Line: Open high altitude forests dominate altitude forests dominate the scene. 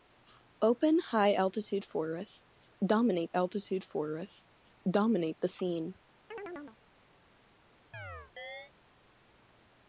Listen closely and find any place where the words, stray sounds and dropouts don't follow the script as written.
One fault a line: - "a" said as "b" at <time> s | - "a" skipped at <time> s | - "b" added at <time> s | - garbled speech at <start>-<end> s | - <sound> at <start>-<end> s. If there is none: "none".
- chirp at 6.3-6.8 s
- chirp at 7.9-8.7 s